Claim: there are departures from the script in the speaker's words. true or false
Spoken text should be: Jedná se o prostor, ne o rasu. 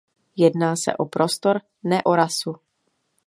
false